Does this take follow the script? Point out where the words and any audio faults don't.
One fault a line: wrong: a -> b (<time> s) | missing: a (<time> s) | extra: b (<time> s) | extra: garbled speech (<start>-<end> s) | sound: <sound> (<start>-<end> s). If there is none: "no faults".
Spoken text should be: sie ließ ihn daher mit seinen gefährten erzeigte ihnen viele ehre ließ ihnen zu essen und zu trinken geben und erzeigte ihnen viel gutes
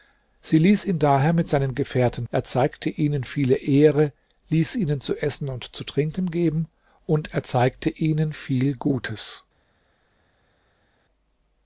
no faults